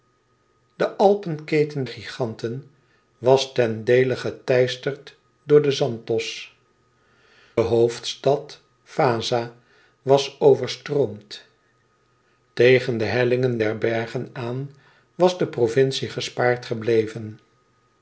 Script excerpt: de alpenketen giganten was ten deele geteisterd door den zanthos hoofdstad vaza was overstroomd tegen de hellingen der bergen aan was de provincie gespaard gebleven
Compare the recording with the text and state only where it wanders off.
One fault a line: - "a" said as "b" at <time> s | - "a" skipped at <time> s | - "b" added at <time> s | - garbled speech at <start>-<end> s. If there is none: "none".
none